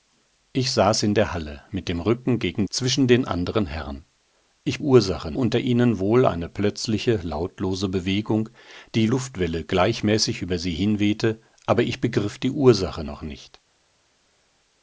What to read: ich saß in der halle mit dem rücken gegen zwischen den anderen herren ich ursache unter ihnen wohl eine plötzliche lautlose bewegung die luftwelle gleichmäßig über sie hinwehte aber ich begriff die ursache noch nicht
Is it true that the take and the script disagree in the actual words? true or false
false